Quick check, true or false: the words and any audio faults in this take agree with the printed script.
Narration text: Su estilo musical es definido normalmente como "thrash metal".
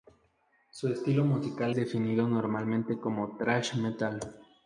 false